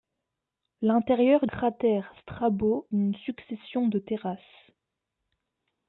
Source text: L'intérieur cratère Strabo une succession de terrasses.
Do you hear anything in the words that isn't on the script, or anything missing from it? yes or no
no